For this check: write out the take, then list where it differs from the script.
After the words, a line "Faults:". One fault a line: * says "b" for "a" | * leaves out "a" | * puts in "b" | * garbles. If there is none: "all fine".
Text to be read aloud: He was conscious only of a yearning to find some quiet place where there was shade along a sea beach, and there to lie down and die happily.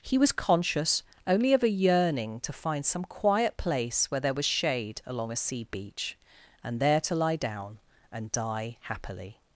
He was conscious only of a yearning to find some quiet place where there was shade along a sea beach, and there to lie down and die happily.
Faults:
all fine